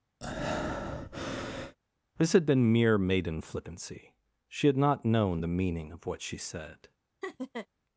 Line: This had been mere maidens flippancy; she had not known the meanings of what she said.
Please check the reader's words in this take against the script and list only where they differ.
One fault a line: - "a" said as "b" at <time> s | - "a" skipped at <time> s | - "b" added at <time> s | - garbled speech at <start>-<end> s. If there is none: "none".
- "maidens" said as "maiden" at 3.0 s
- "meanings" said as "meaning" at 5.5 s